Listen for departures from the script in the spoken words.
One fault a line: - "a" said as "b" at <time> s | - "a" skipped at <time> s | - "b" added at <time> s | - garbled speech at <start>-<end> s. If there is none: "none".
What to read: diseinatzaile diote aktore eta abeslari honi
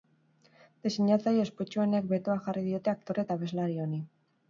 - "ospetsuenek betoa jarri" added at 1.4 s